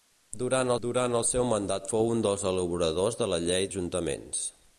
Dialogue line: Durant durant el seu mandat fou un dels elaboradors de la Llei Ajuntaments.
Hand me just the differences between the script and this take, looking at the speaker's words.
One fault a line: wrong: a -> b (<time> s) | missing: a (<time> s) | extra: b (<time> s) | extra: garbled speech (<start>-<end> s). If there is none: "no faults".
no faults